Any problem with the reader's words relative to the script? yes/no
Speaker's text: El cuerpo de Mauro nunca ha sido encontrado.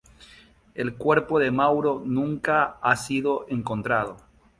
no